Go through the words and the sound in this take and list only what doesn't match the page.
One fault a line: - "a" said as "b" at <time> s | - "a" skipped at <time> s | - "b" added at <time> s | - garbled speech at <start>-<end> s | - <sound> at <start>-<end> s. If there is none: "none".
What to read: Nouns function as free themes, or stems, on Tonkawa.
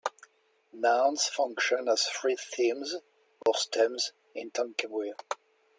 - dropout at 3.4-3.5 s
- "on" said as "in" at 4.3 s